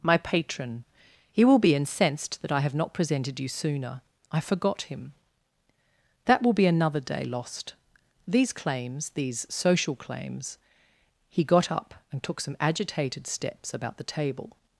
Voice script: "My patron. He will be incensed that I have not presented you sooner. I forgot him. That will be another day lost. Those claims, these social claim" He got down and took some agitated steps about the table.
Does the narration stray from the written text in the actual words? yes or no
yes